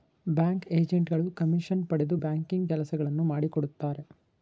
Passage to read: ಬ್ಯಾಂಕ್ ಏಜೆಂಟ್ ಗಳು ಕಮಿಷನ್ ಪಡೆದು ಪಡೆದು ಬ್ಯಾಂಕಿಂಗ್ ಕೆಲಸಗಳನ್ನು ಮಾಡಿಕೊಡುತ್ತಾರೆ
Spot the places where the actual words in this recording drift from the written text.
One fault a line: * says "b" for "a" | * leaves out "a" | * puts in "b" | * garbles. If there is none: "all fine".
* leaves out "ಪಡೆದು"